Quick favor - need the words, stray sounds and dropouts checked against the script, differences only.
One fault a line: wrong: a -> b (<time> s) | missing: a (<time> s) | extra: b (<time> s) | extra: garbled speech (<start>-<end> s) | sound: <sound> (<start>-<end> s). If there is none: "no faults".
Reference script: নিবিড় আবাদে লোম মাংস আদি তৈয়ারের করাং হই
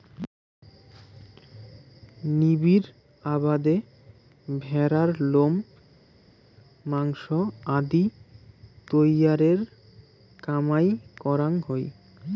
extra: ভ্যাড়ার (4.6 s)
extra: কামাই (10.4 s)